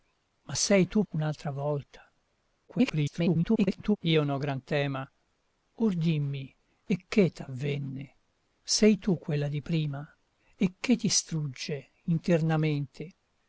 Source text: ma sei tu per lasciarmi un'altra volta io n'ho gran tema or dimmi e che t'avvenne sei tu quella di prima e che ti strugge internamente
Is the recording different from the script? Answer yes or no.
yes